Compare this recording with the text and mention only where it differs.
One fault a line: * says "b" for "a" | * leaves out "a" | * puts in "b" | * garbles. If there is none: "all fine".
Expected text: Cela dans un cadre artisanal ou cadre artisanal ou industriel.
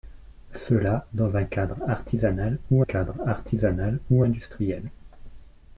all fine